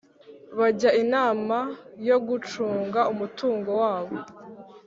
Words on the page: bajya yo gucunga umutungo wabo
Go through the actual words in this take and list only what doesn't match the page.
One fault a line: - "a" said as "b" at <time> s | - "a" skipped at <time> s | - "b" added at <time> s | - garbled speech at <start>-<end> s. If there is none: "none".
- "inama" added at 1.0 s